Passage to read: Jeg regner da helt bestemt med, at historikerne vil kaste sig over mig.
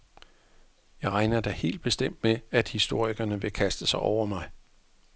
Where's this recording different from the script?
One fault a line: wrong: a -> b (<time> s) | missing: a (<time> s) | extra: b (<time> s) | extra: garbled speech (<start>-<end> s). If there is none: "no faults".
no faults